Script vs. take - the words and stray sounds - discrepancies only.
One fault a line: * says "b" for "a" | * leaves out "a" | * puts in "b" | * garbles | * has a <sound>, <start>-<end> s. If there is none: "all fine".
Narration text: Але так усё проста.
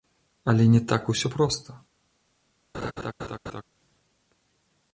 * puts in "не"
* has a laugh, 2.7-3.6 s